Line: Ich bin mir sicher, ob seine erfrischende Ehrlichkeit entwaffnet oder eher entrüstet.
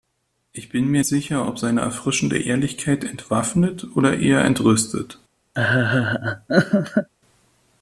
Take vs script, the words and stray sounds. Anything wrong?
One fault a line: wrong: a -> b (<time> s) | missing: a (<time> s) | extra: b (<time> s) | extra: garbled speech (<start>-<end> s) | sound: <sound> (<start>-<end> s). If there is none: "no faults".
sound: laugh (5.5-7.1 s)